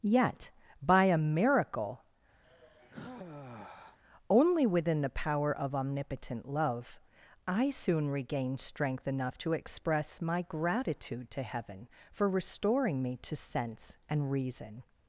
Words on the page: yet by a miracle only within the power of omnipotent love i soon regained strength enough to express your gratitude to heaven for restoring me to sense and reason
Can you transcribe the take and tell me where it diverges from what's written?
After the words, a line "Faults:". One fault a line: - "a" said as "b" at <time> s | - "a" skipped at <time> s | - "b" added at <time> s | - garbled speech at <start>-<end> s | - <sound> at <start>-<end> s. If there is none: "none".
yet by a miracle only within the power of omnipotent love i soon regained strength enough to express my gratitude to heaven for restoring me to sense and reason
Faults:
- sigh at 2.4-4.0 s
- "your" said as "my" at 10.2 s